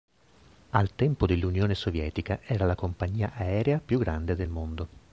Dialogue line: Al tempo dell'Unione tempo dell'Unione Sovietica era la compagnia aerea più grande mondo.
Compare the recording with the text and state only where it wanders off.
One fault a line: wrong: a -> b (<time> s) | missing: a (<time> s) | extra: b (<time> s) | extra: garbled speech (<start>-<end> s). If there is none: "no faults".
missing: tempo dell'Unione (1.7 s)
extra: del (4.4 s)